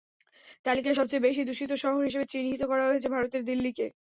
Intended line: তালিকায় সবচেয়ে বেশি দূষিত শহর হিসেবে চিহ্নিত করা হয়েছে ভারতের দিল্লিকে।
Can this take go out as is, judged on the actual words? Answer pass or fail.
pass